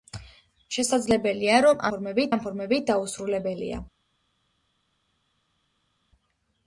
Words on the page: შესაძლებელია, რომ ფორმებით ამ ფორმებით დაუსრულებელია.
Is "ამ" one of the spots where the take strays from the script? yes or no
no